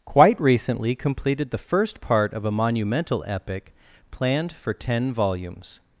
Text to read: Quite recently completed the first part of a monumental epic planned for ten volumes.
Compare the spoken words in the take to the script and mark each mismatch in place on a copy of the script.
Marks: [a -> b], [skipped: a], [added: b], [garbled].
Quite recently completed the first part of a monumental epic planned for ten volumes.